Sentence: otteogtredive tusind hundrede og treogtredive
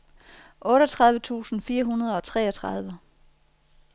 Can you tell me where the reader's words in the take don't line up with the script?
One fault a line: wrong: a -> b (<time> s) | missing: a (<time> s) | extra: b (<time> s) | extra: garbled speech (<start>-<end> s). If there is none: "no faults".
extra: fire (1.6 s)